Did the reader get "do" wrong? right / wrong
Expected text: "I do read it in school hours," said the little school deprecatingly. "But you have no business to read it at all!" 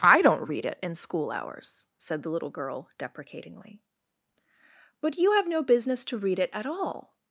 wrong